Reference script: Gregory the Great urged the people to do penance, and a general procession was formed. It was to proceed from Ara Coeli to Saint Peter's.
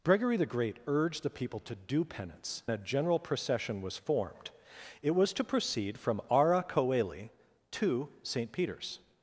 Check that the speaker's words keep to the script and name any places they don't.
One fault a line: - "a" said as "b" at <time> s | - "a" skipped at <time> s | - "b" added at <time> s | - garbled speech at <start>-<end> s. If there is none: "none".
- "and" skipped at 2.6 s